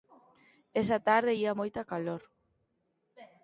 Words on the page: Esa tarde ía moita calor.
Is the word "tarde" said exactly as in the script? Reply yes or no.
yes